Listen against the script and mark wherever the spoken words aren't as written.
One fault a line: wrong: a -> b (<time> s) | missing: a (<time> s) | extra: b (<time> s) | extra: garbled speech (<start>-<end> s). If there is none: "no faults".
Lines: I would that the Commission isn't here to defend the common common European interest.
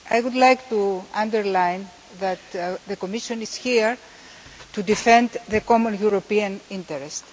extra: like to underline (0.3 s)
wrong: isn't -> is (3.4 s)
missing: common (6.0 s)